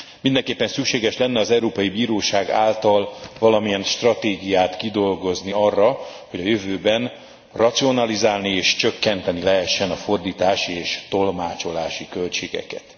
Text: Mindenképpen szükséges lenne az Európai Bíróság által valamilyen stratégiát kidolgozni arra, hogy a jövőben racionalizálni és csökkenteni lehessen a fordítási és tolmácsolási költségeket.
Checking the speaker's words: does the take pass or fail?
pass